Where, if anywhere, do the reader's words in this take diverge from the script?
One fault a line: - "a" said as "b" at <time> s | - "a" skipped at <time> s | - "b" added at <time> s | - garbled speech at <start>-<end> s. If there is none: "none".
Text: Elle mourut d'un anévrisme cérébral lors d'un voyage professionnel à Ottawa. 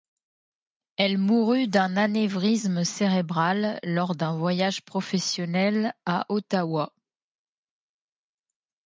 none